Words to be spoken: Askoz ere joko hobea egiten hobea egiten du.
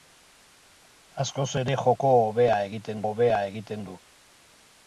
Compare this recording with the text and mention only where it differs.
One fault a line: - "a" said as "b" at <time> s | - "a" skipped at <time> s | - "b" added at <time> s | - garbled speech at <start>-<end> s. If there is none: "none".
none